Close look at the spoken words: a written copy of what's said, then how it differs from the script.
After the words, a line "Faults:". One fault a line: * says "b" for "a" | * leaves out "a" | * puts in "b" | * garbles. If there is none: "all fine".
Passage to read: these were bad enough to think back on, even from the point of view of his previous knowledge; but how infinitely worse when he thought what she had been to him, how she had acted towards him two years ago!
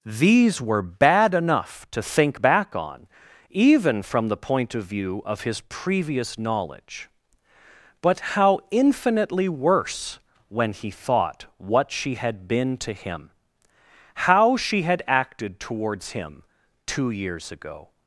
these were bad enough to think back on, even from the point of view of his previous knowledge; but how infinitely worse when he thought what she had been to him, how she had acted towards him two years ago!
Faults:
all fine